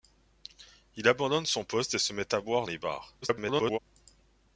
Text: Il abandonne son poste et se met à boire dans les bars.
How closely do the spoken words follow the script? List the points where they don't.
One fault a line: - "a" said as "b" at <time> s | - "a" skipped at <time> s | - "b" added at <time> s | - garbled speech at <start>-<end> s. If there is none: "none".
- "dans" skipped at 2.7 s
- garbled speech at 3.2-3.8 s